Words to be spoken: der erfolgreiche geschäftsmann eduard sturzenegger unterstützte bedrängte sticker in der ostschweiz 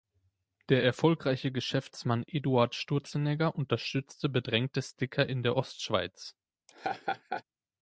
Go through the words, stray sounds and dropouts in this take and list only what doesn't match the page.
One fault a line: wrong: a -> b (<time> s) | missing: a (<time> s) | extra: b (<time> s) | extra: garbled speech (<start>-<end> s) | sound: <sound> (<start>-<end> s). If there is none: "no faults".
sound: laugh (6.7-7.4 s)